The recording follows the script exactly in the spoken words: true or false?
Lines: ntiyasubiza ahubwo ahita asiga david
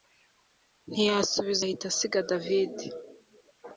false